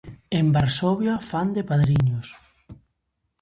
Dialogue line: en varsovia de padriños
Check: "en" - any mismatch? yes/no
no